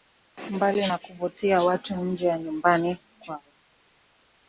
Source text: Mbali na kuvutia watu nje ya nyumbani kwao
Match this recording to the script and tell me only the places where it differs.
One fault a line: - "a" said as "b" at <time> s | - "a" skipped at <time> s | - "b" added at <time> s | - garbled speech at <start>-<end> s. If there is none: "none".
none